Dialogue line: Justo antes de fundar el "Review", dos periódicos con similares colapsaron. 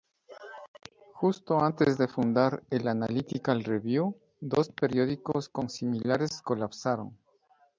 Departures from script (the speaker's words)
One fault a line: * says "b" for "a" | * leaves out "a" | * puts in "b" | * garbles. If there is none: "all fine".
* puts in "Analytical"